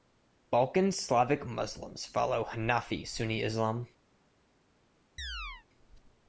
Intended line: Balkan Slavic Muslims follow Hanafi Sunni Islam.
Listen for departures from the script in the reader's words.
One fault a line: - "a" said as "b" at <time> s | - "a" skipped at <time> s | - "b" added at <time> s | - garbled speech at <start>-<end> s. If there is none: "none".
none